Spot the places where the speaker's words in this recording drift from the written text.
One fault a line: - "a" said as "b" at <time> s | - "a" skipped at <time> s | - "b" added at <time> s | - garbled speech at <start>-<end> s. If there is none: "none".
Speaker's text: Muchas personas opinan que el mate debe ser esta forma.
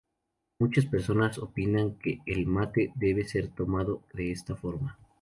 - "tomado de" added at 3.5 s